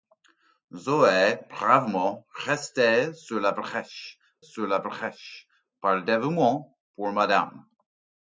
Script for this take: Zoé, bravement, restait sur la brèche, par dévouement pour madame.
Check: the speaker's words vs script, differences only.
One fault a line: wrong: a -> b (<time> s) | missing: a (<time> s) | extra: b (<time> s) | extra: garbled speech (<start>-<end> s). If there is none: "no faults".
extra: sur la brèche (4.4 s)